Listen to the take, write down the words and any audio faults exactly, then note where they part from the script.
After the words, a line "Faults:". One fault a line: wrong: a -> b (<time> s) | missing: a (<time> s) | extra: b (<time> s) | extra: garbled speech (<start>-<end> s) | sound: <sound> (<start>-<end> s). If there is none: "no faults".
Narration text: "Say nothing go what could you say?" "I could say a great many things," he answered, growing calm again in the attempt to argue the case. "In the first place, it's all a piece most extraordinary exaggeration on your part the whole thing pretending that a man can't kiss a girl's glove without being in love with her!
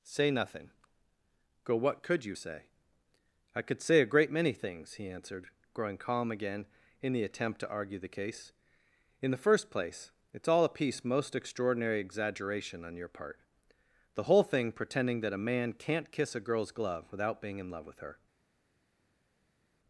"Say nothing go what could you say?" "I could say a great many things," he answered, growing calm again in the attempt to argue the case. "In the first place, it's all a piece most extraordinary exaggeration on your part the whole thing pretending that a man can't kiss a girl's glove without being in love with her!
Faults:
no faults